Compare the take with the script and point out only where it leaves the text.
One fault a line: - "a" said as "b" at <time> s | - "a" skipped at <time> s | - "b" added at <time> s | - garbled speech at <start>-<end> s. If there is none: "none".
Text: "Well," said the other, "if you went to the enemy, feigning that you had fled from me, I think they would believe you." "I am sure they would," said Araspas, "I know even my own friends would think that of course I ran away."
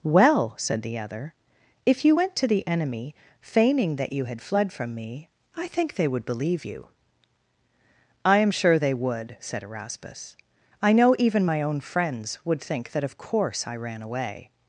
none